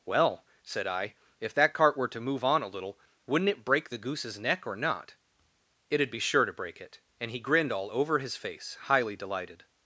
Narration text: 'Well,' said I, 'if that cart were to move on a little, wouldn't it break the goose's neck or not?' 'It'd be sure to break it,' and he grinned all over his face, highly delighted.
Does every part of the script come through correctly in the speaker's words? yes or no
yes